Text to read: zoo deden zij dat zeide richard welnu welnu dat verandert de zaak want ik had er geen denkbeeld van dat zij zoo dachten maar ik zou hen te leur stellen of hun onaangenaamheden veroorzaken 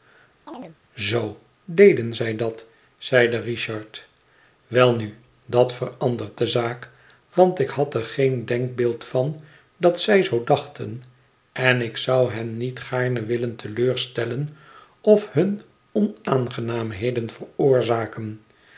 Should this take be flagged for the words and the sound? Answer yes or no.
yes